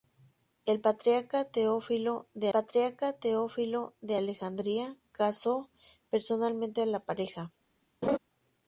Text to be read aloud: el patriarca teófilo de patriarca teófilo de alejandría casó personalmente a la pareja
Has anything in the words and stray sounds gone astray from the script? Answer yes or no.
yes